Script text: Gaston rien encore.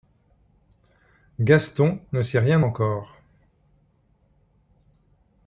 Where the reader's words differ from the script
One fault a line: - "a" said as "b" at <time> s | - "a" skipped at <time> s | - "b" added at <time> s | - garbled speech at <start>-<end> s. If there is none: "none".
- "ne sait" added at 2.1 s